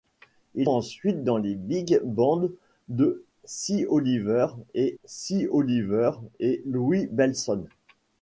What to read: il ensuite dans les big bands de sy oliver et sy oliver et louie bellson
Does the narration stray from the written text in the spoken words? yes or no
no